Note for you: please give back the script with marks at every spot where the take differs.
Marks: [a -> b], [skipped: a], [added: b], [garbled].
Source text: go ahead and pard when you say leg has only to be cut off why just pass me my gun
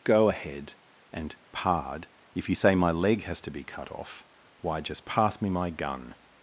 go ahead and pard [when -> if] you say [added: my] leg has [skipped: only] to be cut off why just pass me my gun